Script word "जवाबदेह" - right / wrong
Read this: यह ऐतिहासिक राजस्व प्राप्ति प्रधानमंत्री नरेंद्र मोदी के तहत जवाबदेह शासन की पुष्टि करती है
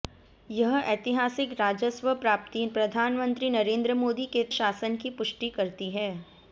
wrong